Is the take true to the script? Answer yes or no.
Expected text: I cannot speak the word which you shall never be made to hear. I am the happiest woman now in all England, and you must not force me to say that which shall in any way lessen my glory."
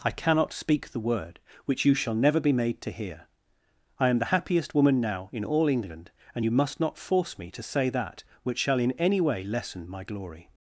yes